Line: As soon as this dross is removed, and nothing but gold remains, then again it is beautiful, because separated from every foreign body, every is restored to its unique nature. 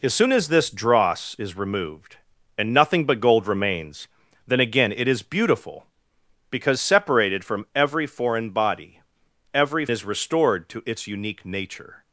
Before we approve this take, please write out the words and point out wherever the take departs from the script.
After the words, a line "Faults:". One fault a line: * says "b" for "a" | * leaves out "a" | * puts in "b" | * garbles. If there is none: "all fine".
As soon as this dross is removed, and nothing but gold remains, then again it is beautiful, because separated from every foreign body, every is restored to its unique nature.
Faults:
all fine